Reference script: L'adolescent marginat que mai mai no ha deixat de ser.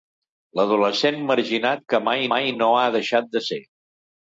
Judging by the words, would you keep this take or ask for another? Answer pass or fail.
pass